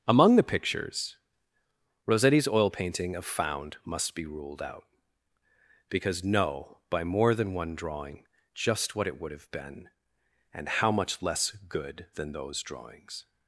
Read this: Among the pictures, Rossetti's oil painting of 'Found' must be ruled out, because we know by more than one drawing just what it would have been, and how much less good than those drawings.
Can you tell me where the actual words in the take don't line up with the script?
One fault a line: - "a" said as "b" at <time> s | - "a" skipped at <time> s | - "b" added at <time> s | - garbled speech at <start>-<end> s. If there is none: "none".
- "we" skipped at 6.2 s